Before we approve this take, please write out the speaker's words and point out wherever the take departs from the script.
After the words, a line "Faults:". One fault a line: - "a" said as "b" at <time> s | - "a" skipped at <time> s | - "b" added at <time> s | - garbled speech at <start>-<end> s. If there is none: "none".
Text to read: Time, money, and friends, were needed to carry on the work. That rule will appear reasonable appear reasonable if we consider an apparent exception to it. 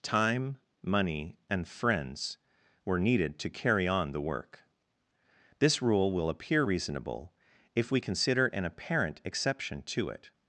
Time, money, and friends, were needed to carry on the work. This rule will appear reasonable if we consider an apparent exception to it.
Faults:
- "That" said as "This" at 5.6 s
- "appear reasonable" skipped at 7.3 s